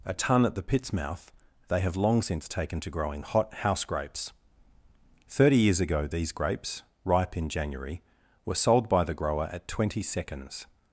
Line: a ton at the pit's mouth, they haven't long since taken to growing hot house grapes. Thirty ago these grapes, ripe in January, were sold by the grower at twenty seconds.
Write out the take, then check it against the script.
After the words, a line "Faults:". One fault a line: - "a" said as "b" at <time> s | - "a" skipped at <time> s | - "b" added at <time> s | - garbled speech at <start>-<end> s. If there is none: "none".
a ton at the pit's mouth, they have long since taken to growing hot house grapes. Thirty years ago these grapes, ripe in January, were sold by the grower at twenty seconds.
Faults:
- "haven't" said as "have" at 1.8 s
- "years" added at 5.6 s